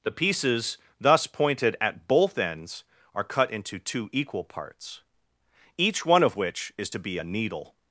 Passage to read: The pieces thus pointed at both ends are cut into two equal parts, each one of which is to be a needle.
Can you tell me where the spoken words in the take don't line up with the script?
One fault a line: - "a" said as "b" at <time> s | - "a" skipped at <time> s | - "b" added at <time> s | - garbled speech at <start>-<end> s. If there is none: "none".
none